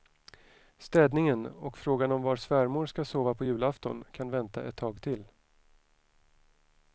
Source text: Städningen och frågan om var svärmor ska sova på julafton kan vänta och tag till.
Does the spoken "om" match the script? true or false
true